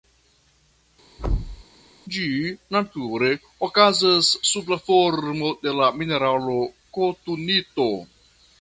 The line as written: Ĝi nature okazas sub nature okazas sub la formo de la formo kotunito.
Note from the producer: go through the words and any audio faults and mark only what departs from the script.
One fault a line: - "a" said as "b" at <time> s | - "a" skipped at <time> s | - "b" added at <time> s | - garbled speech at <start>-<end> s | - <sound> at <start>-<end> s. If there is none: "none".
- thud at 1.2-1.6 s
- "nature okazas sub" skipped at 4.7 s
- "formo" said as "mineralo" at 6.0 s